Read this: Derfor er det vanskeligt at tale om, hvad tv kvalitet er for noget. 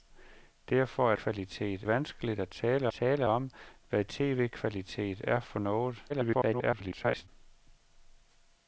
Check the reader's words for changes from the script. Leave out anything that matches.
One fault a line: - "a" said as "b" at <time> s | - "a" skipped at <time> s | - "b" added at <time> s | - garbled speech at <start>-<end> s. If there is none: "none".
- "det" said as "kvalitet" at 1.1 s
- "tale" added at 2.9 s
- garbled speech at 6.1-7.3 s